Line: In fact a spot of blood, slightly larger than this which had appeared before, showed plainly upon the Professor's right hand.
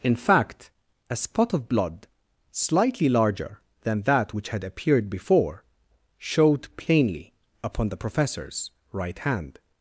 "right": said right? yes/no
yes